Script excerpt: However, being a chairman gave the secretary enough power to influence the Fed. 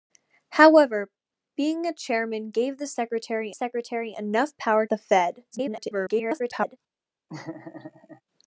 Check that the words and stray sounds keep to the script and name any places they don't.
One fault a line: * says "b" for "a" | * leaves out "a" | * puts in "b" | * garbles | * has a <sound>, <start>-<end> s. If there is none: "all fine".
* puts in "secretary"
* leaves out "to influence"
* garbles
* has a laugh, 7.3-8.2 s